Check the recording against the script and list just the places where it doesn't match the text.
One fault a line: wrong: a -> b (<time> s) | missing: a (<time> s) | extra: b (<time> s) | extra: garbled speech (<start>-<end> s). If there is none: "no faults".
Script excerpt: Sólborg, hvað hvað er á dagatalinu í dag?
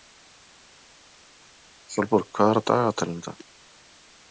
missing: hvað (2.5 s)